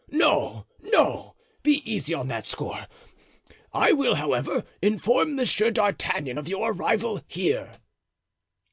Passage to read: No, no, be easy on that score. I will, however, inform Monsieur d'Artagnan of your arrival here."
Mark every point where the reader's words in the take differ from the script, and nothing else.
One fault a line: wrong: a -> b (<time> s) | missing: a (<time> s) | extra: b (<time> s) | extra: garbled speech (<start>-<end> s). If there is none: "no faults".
no faults